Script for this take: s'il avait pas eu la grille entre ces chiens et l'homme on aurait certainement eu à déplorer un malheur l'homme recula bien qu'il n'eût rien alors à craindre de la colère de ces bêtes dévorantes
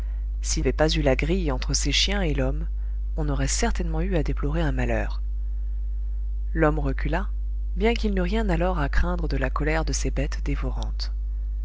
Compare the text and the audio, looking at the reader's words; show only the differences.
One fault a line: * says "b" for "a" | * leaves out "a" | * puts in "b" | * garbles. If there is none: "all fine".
all fine